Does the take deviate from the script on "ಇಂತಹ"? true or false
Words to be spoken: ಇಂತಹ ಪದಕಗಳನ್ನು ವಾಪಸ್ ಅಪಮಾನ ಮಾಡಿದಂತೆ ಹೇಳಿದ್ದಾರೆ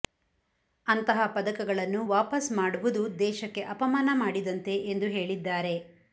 true